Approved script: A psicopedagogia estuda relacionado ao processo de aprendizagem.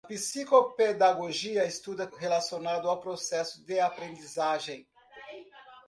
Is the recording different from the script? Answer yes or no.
no